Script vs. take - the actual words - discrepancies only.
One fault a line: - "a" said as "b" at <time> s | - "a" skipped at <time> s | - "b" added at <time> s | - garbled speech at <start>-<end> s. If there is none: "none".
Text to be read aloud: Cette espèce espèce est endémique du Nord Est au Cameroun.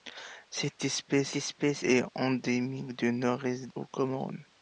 none